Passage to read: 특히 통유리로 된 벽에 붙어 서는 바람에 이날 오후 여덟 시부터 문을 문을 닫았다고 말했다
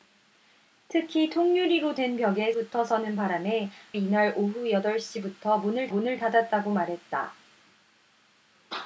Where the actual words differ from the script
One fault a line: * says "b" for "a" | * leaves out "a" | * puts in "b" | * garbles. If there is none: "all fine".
all fine